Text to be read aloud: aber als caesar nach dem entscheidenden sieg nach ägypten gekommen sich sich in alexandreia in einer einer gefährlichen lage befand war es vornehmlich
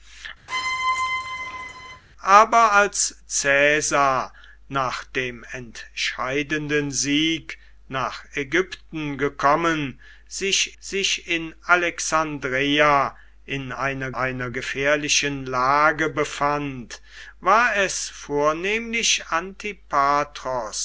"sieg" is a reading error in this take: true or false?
false